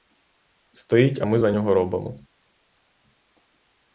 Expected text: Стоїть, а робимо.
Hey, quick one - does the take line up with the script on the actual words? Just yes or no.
no